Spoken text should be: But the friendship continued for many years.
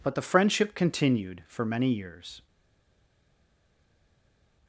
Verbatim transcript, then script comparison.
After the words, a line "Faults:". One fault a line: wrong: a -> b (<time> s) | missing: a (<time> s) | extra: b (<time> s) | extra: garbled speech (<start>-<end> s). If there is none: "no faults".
But the friendship continued for many years.
Faults:
no faults